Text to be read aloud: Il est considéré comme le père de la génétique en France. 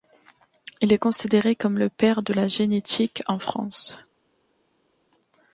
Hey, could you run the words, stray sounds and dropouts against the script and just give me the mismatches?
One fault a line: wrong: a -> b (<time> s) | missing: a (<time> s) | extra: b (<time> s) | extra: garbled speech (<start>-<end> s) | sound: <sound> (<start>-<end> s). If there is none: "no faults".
no faults